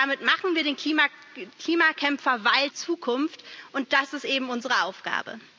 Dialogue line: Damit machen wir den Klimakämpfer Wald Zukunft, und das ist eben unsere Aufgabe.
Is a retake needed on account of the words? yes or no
no